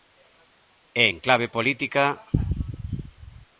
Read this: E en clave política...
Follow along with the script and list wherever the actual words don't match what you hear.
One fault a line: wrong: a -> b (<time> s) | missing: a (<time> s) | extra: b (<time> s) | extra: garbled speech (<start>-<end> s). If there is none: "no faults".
no faults